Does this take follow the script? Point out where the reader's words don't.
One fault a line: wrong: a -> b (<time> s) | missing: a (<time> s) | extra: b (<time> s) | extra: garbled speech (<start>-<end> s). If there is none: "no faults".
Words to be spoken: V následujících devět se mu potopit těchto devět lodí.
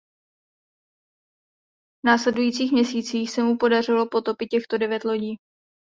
wrong: devět -> měsících (2.7 s)
extra: podařilo (3.6 s)